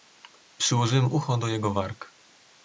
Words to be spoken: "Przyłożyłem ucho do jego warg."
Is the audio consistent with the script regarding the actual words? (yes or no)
yes